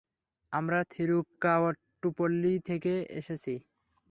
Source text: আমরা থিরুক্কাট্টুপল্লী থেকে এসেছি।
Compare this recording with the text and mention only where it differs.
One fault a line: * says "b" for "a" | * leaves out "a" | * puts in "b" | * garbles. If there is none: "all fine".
all fine